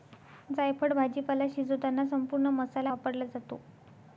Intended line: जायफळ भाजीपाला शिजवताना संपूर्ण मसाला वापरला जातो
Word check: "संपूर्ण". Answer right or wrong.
right